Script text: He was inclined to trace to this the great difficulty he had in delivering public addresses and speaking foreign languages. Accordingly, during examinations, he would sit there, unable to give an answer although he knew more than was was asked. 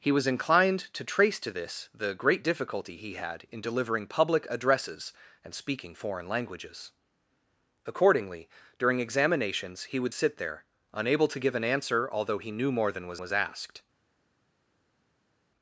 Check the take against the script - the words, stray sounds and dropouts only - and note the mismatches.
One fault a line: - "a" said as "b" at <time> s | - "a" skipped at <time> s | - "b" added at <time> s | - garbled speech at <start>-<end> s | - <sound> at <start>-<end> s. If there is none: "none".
none